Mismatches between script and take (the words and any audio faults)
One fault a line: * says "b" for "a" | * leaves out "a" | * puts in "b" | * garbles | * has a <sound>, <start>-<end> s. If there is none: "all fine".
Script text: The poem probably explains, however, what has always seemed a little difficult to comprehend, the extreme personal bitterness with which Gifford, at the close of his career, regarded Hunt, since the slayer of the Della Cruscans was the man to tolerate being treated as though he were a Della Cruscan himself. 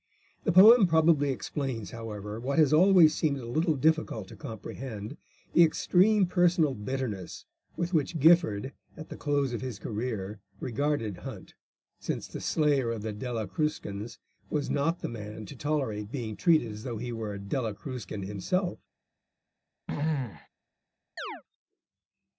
* puts in "not"
* has a throat clearing, 19.9-20.5 s
* has a chirp, 21.2-21.4 s